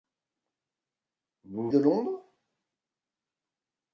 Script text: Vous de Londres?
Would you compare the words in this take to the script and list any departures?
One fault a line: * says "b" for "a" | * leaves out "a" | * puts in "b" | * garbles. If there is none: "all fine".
all fine